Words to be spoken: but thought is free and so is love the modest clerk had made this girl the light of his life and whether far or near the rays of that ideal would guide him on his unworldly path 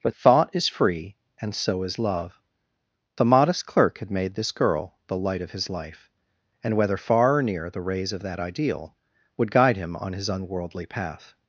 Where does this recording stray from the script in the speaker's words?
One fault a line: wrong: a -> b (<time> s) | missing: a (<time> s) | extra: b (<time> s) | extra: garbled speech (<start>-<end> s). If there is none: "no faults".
no faults